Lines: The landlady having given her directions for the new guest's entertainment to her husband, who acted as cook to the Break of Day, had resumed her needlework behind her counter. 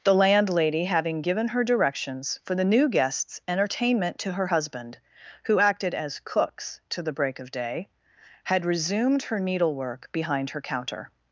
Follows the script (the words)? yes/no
no